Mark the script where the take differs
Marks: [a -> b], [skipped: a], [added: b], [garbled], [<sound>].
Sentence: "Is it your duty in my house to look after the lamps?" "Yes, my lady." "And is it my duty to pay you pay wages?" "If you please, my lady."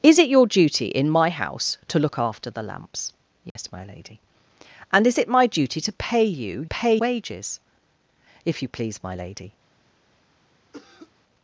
"Is it your duty in my house to look after the lamps?" "Yes, [dropout] my lady." "And is it my duty to pay you pay wages?" "If you please, my lady." [cough]